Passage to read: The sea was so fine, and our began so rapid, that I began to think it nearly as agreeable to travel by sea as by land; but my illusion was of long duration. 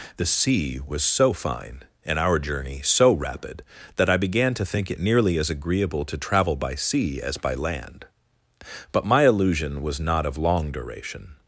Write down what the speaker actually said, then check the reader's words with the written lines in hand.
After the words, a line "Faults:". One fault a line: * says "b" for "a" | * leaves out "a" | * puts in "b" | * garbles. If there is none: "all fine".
The sea was so fine, and our journey so rapid, that I began to think it nearly as agreeable to travel by sea as by land; but my illusion was not of long duration.
Faults:
* says "journey" for "began"
* puts in "not"